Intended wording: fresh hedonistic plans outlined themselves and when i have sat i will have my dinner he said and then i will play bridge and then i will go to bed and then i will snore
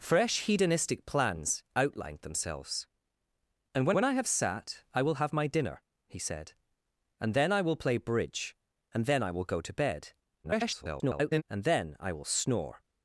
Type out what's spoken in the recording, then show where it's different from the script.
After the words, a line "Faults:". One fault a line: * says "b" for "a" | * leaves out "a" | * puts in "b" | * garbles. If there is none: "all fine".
fresh hedonistic plans outlined themselves and when when i have sat i will have my dinner he said and then i will play bridge and then i will go to bed [garbled] and then i will snore
Faults:
* puts in "when"
* garbles